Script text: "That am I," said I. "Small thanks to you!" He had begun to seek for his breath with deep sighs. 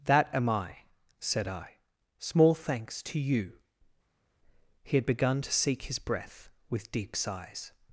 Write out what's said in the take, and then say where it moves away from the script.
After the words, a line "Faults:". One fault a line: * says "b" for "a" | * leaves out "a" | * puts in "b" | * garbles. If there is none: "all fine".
"That am I," said I. "Small thanks to you!" He had begun to seek his breath with deep sighs.
Faults:
* leaves out "for"